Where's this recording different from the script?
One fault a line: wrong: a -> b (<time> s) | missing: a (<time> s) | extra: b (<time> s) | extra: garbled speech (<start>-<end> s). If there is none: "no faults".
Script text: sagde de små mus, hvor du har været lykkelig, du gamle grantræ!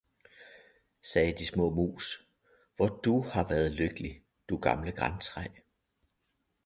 no faults